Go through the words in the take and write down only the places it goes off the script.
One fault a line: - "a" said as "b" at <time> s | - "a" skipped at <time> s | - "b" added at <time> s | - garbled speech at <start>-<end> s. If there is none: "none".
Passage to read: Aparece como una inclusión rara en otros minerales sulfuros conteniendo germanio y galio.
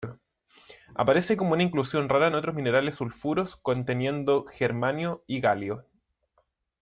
none